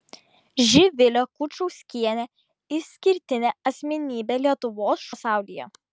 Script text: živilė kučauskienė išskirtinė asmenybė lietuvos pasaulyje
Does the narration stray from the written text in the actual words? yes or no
no